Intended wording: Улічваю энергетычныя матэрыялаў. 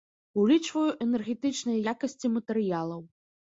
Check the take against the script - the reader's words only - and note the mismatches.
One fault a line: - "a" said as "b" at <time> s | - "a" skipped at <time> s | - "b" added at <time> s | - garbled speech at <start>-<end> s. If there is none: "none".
- "якасці" added at 1.9 s